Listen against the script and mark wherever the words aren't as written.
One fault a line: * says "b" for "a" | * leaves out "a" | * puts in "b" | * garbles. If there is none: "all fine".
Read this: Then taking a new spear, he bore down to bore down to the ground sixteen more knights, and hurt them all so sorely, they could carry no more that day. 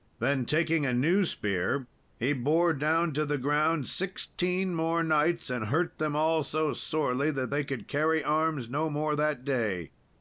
* leaves out "bore down to"
* puts in "that"
* puts in "arms"